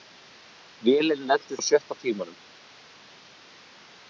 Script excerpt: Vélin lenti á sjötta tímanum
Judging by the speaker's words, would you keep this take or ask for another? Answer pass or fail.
pass